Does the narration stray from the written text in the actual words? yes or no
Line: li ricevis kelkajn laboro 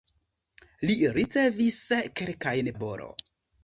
no